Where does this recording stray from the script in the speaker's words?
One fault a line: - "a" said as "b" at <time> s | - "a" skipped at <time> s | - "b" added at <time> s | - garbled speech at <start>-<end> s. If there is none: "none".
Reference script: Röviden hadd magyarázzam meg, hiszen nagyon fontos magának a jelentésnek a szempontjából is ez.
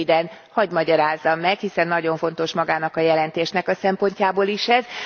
none